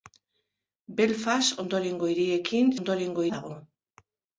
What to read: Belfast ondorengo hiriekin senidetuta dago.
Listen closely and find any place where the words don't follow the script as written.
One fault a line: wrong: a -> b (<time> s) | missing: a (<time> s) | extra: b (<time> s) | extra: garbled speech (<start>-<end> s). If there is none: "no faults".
wrong: senidetuta -> ondorengo (2.8 s)